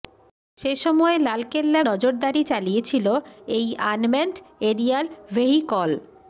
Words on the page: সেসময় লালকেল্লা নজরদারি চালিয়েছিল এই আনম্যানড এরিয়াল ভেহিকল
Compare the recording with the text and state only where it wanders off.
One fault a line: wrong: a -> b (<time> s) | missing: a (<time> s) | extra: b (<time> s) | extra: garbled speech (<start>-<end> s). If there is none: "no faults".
no faults